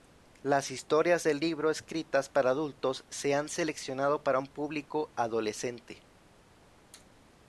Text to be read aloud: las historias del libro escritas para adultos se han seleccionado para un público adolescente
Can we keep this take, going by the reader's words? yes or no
yes